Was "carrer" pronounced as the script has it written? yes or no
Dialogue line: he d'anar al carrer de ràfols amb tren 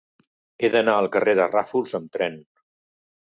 yes